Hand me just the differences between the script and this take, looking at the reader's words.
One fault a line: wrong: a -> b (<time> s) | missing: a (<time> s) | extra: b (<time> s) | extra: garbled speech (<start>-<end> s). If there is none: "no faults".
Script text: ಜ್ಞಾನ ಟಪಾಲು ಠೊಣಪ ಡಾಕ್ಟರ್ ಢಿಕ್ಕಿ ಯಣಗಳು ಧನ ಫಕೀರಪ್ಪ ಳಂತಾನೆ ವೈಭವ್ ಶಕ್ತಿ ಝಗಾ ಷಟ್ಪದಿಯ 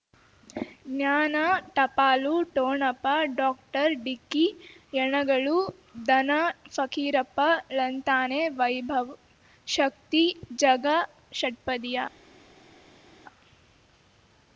no faults